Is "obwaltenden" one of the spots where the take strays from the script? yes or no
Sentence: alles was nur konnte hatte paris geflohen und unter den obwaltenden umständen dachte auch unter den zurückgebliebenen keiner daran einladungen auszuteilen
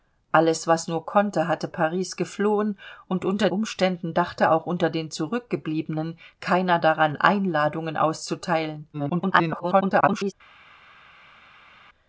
yes